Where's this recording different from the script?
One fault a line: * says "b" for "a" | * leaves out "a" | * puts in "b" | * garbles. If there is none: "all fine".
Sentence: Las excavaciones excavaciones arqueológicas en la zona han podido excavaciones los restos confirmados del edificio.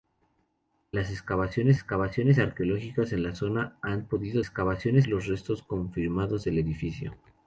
all fine